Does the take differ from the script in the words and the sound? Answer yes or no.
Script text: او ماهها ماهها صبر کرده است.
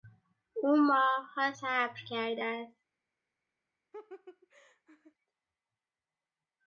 yes